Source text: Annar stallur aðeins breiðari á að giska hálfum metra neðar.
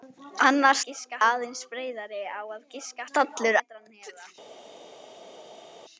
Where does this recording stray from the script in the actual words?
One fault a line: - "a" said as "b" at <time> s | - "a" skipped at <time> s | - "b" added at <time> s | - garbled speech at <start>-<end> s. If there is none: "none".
- "stallur" said as "giska" at 0.9 s
- "hálfum" said as "stallur" at 3.1 s